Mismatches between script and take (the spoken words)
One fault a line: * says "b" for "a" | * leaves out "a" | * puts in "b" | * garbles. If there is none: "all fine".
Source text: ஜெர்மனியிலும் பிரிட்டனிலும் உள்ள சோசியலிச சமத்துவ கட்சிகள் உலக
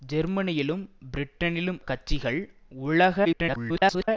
* leaves out "உள்ள சோசியலிச சமத்துவ"
* garbles